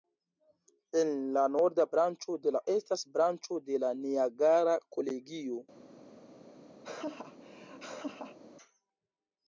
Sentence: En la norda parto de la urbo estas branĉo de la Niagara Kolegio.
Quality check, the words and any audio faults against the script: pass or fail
fail